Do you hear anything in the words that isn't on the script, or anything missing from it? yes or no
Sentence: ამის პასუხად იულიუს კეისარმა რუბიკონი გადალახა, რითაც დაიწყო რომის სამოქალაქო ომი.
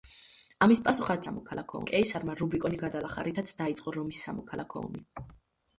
yes